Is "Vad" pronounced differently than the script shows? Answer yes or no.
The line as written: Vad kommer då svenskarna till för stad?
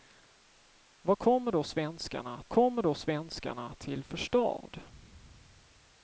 no